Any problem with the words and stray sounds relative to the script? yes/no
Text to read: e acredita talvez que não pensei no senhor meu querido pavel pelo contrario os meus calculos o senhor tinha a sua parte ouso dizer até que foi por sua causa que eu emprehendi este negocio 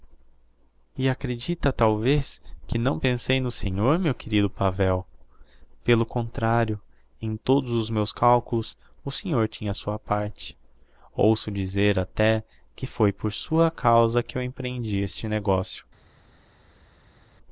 yes